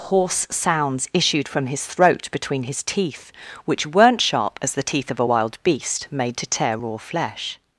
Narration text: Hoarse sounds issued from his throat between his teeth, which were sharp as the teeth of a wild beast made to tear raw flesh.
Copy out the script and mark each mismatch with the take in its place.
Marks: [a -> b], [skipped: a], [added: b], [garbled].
Hoarse sounds issued from his throat between his teeth, which [were -> weren't] sharp as the teeth of a wild beast made to tear raw flesh.